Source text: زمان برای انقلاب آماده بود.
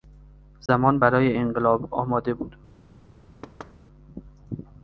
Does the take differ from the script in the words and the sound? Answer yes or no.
yes